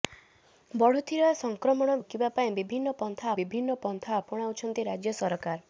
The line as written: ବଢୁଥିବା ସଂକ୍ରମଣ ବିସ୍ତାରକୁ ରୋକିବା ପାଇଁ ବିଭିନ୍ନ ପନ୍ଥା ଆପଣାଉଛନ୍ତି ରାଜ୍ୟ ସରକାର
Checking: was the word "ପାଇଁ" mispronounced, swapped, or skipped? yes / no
no